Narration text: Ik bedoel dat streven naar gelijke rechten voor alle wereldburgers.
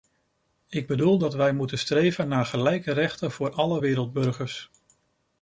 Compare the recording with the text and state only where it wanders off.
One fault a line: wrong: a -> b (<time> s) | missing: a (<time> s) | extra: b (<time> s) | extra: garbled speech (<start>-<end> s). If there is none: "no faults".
extra: wij moeten (1.3 s)